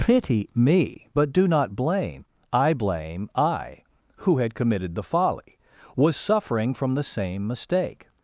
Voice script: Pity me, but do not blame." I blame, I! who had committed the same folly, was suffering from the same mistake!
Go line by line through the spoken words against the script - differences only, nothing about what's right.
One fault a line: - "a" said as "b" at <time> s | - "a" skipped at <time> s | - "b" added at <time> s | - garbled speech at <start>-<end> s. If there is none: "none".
- "same" skipped at 5.0 s